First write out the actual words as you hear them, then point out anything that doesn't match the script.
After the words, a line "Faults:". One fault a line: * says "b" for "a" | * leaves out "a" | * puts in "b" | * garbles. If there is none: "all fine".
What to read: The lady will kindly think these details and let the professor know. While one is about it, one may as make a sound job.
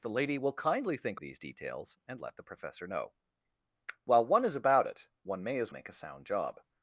The lady will kindly think these details and let the professor know. While one is about it, one may as make a sound job.
Faults:
all fine